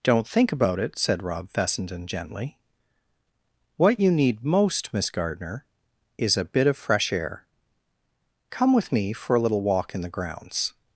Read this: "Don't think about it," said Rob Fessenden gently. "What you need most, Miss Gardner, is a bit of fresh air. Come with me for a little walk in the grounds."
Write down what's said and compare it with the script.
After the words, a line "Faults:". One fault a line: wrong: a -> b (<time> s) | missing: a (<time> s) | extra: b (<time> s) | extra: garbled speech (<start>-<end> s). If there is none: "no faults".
"Don't think about it," said Rob Fessenden gently. "What you need most, Miss Gardner, is a bit of fresh air. Come with me for a little walk in the grounds."
Faults:
no faults